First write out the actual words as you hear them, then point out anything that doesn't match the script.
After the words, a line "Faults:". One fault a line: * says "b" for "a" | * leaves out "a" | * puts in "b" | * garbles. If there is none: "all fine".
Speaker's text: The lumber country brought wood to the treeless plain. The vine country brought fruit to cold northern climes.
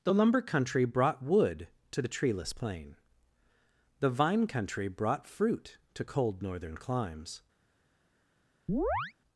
The lumber country brought wood to the treeless plain. The vine country brought fruit to cold northern climes.
Faults:
all fine